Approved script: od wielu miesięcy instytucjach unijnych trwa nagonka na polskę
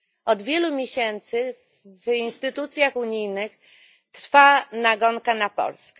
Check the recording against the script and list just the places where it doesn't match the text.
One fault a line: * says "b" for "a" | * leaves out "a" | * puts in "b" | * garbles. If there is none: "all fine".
* puts in "w"